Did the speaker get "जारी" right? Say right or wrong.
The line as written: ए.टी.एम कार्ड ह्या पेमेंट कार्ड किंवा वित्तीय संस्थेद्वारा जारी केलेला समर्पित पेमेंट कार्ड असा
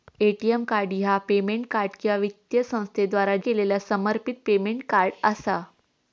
wrong